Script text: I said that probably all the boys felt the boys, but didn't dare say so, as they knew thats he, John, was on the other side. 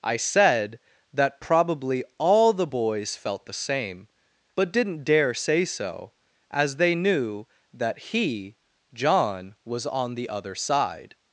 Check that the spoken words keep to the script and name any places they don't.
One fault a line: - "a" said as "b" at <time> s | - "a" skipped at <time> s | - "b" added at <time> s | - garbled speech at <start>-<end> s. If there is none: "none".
- "boys" said as "same" at 3.5 s
- "thats" said as "that" at 7.7 s